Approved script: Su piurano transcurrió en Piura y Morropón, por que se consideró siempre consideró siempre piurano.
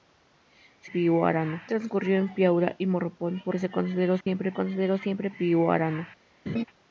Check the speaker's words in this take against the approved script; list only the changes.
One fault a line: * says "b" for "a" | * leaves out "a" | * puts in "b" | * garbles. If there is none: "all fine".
all fine